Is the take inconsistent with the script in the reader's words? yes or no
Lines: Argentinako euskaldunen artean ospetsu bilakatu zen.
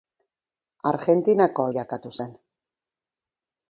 yes